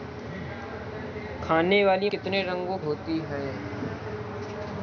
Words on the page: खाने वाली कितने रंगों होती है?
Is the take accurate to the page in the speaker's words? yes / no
yes